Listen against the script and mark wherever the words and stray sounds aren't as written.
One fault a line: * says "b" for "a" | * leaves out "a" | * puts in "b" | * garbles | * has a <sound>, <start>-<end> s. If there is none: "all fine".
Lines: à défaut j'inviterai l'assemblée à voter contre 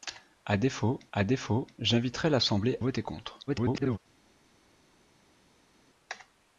* puts in "à défaut"
* leaves out "à"
* garbles